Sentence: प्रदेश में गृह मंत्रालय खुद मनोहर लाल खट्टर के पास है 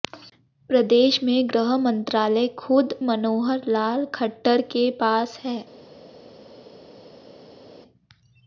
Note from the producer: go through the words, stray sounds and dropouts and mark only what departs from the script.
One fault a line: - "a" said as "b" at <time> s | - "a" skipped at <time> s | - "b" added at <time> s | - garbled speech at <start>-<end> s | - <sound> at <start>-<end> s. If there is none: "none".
none